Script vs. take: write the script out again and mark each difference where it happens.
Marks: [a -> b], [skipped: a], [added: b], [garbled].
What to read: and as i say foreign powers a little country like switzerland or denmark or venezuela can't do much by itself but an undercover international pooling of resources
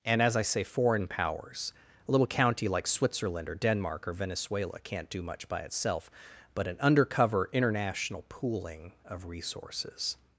and as i say foreign powers a little [country -> county] like switzerland or denmark or venezuela can't do much by itself but an undercover international pooling of resources